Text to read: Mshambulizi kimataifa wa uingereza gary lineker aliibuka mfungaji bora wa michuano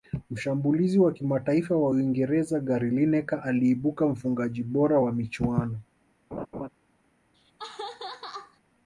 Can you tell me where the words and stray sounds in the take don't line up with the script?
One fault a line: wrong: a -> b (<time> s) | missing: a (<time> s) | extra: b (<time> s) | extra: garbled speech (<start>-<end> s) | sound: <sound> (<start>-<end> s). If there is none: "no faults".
extra: wa (1.0 s)
sound: laugh (6.3-6.7 s)
sound: laugh (7.3-8.6 s)